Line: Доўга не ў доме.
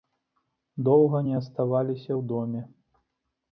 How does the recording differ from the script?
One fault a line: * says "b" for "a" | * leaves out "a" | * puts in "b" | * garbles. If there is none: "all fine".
* puts in "аставаліся"